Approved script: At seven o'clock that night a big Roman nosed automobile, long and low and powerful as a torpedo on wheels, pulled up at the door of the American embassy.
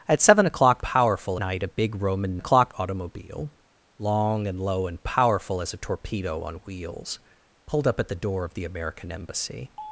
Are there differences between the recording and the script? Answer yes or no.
yes